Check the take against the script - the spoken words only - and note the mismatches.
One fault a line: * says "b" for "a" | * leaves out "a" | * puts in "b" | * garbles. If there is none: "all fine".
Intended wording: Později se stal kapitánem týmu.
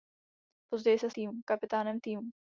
* says "týmu" for "stal"